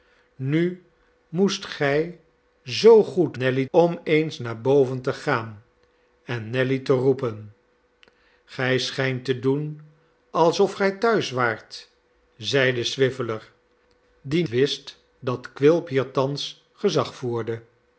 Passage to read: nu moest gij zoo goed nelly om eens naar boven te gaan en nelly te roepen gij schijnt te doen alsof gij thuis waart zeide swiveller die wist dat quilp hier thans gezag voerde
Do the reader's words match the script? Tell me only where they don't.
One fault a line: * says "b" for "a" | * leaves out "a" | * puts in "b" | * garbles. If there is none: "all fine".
all fine